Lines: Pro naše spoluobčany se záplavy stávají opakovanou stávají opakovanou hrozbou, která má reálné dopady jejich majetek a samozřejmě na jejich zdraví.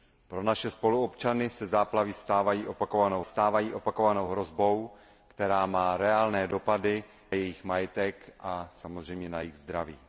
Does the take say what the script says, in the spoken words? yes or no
yes